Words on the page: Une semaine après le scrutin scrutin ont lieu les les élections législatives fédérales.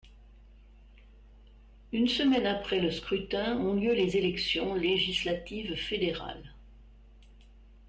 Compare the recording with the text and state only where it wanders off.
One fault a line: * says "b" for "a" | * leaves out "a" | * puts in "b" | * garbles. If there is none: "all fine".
* leaves out "scrutin"
* leaves out "les"